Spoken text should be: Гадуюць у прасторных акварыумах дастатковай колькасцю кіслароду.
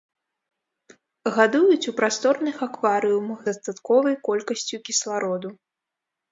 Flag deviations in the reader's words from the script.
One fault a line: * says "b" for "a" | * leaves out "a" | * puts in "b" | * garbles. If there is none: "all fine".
all fine